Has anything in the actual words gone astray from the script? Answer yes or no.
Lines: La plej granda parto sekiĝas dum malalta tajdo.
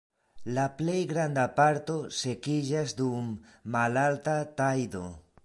no